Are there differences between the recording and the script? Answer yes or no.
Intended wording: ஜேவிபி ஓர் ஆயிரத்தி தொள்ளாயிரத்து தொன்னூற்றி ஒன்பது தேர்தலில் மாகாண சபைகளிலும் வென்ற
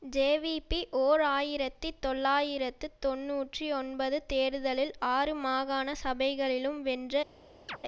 yes